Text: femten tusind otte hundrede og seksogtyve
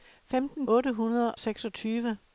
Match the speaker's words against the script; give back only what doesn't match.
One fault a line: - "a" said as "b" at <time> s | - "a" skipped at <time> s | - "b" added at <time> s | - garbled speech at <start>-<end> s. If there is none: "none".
- "tusind" skipped at 0.7 s
- "og" skipped at 1.3 s